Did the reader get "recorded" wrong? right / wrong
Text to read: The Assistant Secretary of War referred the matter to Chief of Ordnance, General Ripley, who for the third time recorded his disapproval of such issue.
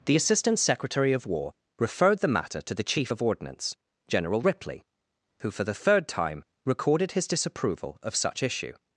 right